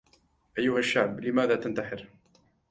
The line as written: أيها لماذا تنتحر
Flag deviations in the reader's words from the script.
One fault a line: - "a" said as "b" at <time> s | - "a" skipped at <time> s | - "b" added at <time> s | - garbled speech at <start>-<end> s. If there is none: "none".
- "الشعب" added at 0.8 s